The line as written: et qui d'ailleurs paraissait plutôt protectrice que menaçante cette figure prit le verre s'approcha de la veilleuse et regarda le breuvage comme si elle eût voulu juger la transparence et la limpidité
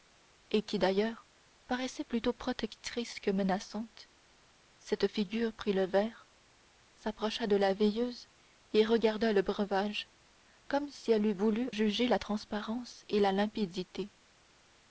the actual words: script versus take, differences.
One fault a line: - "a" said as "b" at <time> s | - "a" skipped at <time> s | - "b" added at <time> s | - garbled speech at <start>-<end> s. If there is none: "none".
none